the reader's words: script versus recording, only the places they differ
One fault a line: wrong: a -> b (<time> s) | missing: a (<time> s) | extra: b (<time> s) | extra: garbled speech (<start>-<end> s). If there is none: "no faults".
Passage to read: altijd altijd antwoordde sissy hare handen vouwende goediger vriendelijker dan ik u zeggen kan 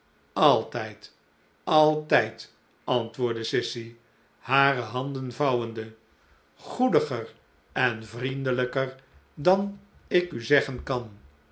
extra: en (7.7 s)